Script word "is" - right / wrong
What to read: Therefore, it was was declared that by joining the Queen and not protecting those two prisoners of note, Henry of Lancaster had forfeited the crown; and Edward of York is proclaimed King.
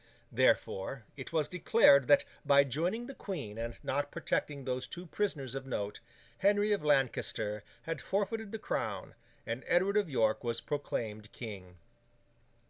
wrong